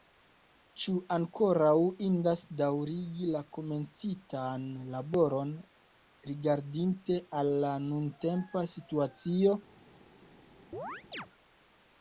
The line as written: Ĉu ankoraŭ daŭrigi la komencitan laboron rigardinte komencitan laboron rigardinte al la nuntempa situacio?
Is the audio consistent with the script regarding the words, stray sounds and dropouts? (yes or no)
no